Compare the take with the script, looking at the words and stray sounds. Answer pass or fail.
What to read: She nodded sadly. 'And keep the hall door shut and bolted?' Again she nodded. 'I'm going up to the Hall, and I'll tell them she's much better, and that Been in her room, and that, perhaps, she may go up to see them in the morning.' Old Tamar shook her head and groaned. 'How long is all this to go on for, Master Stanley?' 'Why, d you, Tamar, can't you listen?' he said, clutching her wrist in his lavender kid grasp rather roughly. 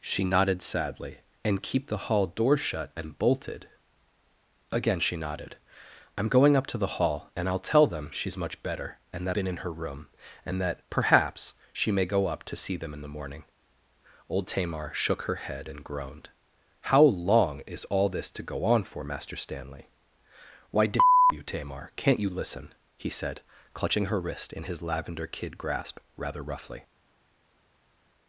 pass